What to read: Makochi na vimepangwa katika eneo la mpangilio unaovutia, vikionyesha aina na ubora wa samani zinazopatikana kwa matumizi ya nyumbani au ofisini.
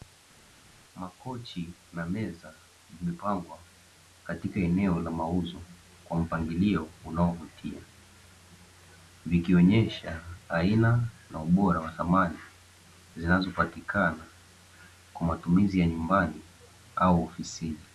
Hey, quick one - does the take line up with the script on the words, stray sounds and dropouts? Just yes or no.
no